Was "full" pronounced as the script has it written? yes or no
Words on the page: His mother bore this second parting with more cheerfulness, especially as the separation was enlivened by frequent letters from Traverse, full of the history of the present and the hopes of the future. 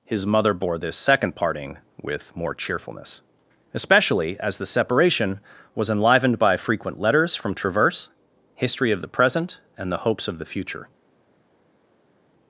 no